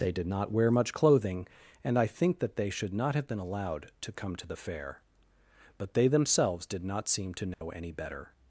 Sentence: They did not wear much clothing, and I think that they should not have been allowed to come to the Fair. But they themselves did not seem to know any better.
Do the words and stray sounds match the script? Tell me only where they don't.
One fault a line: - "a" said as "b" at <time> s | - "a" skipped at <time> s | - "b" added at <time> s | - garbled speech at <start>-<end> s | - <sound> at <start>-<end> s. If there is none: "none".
- dropout at 7.5-7.6 s